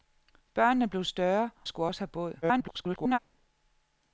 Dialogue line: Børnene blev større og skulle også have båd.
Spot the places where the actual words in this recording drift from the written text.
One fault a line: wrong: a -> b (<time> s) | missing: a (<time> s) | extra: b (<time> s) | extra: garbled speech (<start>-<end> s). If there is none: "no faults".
missing: og (1.5 s)
extra: garbled speech (2.4-3.2 s)